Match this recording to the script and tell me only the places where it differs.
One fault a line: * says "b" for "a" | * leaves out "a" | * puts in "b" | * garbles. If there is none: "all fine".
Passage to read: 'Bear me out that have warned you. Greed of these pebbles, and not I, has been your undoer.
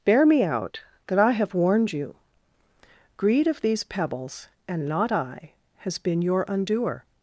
* puts in "I"